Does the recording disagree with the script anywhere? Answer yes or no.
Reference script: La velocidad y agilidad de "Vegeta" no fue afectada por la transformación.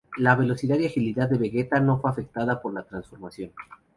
no